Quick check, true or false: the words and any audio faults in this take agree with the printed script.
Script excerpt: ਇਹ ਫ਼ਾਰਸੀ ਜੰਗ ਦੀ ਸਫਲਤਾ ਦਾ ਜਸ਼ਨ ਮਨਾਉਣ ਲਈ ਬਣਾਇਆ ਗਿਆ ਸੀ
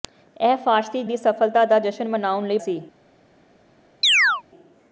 false